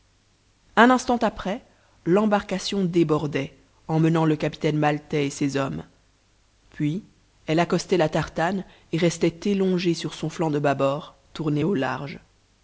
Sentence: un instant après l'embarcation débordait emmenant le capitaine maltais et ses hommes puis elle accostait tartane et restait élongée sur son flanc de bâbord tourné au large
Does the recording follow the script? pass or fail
fail